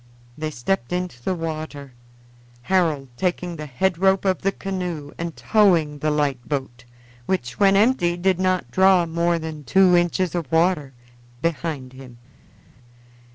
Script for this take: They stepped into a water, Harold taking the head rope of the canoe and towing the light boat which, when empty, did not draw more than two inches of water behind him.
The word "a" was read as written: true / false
false